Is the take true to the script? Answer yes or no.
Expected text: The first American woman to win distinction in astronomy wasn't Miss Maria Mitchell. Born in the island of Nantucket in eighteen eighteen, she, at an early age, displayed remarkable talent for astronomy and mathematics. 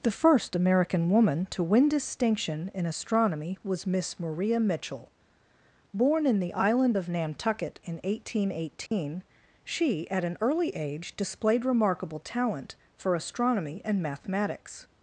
no